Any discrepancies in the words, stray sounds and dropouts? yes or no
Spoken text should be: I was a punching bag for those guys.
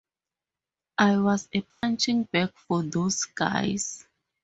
yes